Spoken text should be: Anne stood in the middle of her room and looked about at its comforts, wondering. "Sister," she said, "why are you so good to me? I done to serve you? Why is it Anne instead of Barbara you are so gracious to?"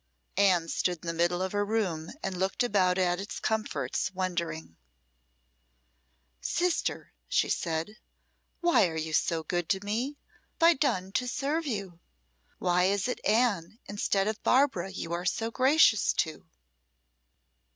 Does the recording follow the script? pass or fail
pass